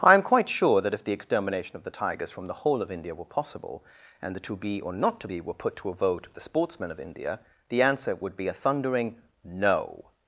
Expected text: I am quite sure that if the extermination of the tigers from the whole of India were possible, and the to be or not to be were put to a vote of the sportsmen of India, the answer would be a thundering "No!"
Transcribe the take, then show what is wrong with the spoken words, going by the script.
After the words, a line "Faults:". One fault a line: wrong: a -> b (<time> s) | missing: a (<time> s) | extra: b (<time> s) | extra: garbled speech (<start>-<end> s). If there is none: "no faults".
I am quite sure that if the extermination of the tigers from the whole of India were possible, and the to be or not to be were put to a vote of the sportsmen of India, the answer would be a thundering "No!"
Faults:
no faults